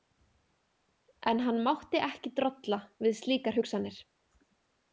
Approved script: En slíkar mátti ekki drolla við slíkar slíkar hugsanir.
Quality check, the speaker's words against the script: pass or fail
fail